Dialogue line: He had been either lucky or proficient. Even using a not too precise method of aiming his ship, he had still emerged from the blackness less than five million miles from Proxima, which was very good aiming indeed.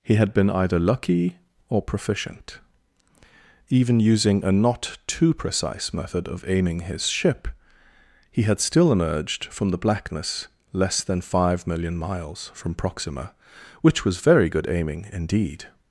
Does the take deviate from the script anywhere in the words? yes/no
no